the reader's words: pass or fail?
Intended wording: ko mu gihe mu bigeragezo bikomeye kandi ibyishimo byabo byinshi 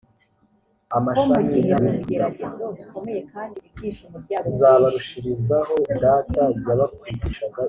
pass